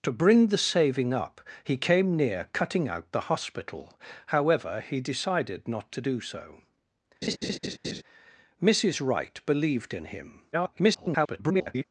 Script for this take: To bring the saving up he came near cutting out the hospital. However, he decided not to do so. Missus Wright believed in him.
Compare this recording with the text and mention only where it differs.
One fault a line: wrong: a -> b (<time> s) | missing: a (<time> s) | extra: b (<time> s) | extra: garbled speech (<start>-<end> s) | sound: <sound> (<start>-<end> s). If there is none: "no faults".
sound: laugh (7.2-8.0 s)
extra: garbled speech (10.5-11.8 s)